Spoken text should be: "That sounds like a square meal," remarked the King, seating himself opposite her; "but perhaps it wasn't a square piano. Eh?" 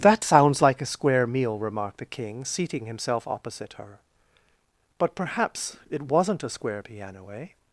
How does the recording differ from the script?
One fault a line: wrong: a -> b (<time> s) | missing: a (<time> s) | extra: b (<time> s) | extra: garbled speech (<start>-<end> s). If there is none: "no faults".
no faults